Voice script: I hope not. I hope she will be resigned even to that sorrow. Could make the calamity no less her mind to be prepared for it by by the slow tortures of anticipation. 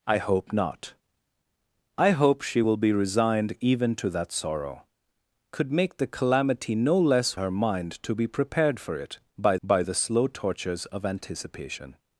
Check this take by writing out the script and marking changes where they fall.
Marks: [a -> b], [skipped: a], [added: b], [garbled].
I hope not. I hope she will be resigned even to that sorrow. Could make the calamity no less her mind to be prepared for it by by the slow tortures of anticipation.